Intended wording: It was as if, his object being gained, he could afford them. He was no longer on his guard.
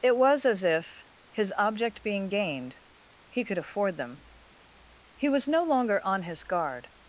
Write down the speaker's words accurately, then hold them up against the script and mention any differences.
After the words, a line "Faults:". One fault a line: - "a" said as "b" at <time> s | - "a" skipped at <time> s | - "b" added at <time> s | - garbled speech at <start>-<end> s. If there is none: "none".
It was as if, his object being gained, he could afford them. He was no longer on his guard.
Faults:
none